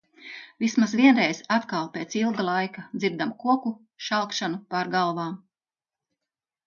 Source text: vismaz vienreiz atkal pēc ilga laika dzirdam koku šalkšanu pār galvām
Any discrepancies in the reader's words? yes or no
no